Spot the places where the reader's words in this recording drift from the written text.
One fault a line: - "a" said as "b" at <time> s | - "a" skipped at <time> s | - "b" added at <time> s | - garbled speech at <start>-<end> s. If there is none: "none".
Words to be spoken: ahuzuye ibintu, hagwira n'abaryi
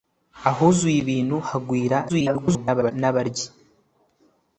- garbled speech at 2.1-2.9 s